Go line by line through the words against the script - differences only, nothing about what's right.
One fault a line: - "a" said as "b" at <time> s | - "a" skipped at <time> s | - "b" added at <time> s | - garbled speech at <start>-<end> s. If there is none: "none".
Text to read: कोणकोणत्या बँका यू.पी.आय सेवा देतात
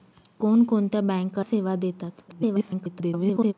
- "यू.पी.आय" skipped at 1.4 s
- garbled speech at 2.3-3.5 s